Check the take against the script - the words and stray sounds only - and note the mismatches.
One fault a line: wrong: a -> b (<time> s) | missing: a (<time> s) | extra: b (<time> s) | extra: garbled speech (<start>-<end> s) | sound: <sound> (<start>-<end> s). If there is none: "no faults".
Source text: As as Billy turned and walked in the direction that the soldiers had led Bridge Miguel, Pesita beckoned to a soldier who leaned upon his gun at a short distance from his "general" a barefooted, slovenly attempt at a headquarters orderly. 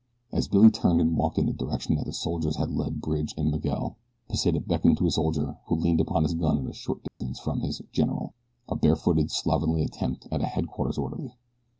missing: as (0.5 s)
extra: and (3.4 s)
sound: dropout (7.1-7.2 s)